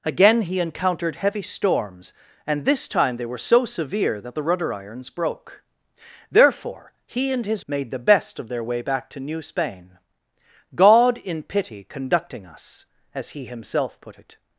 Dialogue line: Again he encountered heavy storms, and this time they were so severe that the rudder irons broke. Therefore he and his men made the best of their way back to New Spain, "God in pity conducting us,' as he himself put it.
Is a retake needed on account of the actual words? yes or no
yes